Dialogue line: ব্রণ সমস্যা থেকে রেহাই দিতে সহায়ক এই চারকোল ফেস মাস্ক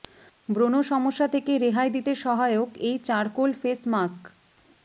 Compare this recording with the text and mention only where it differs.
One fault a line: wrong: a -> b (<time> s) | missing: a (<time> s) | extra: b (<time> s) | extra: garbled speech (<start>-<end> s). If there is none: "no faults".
no faults